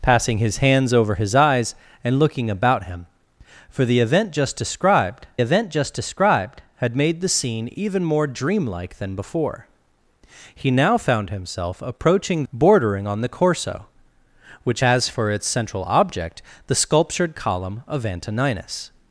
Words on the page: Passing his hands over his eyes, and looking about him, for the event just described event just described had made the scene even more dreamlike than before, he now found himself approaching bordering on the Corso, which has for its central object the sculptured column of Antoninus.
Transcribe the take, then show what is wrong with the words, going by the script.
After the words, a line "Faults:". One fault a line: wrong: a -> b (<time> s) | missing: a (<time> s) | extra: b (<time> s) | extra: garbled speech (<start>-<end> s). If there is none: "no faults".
Passing his hands over his eyes, and looking about him, for the event just described event just described had made the scene even more dreamlike than before, he now found himself approaching bordering on the Corso, which has for its central object the sculptured column of Antoninus.
Faults:
no faults